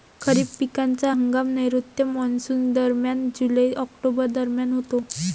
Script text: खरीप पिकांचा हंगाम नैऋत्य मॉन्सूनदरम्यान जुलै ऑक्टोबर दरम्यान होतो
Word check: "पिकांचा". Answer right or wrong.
right